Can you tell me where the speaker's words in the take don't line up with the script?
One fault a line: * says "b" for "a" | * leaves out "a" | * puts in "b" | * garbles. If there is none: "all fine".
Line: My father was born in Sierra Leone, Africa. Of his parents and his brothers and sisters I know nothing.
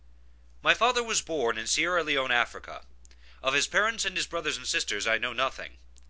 all fine